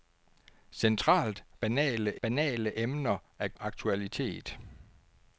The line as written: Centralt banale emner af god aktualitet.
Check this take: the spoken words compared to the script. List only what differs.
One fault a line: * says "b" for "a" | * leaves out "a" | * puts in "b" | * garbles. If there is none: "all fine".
* puts in "banale"
* leaves out "god"